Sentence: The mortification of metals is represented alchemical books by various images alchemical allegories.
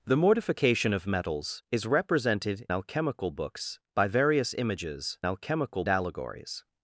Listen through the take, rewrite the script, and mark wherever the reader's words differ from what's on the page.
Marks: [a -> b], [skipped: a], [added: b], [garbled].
The mortification of metals is represented alchemical books by various images alchemical allegories.